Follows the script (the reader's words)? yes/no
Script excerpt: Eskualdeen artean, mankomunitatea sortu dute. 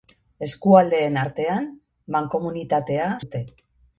no